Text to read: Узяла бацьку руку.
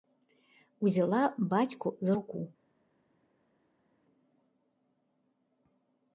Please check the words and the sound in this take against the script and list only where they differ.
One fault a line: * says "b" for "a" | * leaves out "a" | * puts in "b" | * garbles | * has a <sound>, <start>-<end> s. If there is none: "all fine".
* puts in "за"